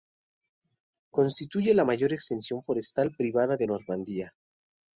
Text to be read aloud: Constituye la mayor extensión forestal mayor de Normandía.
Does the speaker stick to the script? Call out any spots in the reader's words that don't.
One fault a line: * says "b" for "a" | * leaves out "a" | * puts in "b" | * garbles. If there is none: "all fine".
* says "privada" for "mayor"